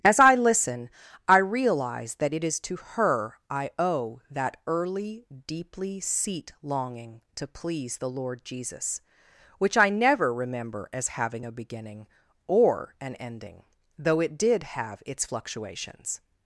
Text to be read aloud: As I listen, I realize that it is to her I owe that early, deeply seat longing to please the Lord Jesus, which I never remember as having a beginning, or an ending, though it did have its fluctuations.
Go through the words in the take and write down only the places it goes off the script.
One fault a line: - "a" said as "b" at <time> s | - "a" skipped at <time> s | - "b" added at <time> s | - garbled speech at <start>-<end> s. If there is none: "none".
none